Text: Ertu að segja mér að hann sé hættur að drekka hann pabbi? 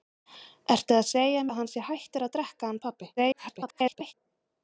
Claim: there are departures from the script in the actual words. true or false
true